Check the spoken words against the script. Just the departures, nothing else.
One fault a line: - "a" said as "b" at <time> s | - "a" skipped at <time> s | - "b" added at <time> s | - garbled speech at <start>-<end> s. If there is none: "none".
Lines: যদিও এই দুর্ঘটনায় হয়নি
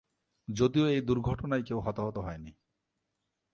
- "কেউ হতাহত" added at 1.6 s